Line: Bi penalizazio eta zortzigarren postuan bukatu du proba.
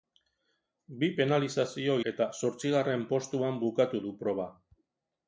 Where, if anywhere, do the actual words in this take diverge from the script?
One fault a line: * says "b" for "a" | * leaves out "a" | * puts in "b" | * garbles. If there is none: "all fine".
all fine